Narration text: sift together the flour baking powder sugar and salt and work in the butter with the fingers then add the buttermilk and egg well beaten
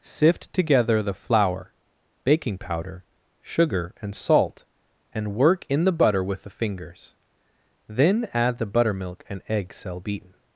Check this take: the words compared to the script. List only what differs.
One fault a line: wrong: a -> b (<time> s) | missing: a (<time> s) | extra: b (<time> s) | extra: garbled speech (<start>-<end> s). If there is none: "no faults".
wrong: well -> cell (9.7 s)